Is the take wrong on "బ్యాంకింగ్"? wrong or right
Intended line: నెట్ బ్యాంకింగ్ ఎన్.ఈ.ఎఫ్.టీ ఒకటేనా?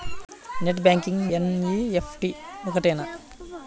right